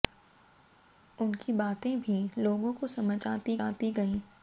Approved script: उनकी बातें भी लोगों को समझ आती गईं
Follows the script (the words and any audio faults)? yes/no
no